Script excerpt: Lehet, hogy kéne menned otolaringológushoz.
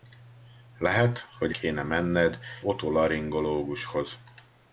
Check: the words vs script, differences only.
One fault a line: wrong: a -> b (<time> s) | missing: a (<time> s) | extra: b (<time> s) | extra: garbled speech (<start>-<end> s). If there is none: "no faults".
no faults